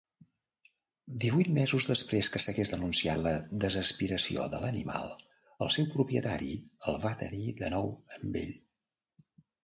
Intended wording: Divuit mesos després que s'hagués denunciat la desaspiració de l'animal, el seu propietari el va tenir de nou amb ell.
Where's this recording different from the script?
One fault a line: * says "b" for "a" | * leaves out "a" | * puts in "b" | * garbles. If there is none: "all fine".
all fine